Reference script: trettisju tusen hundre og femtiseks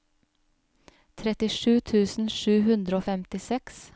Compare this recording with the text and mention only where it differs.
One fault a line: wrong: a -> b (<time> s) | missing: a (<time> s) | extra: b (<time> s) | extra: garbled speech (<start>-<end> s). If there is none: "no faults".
extra: sju (2.4 s)